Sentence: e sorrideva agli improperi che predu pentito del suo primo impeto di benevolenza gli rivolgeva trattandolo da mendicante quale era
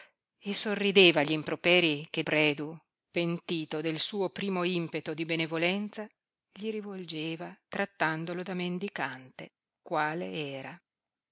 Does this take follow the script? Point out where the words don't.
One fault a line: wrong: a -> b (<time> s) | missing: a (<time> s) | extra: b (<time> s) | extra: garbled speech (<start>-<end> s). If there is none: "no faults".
no faults